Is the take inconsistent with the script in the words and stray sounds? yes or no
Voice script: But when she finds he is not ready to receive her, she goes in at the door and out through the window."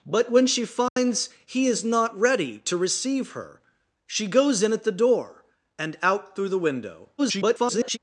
yes